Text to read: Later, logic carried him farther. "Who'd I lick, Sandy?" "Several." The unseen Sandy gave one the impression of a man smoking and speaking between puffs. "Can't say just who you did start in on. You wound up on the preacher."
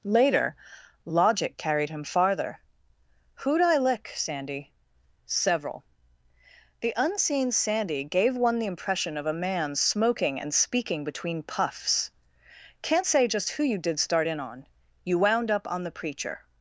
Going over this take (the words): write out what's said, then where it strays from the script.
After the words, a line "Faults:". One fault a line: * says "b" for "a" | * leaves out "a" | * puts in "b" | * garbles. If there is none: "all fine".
Later, logic carried him farther. "Who'd I lick, Sandy?" "Several." The unseen Sandy gave one the impression of a man smoking and speaking between puffs. "Can't say just who you did start in on. You wound up on the preacher."
Faults:
all fine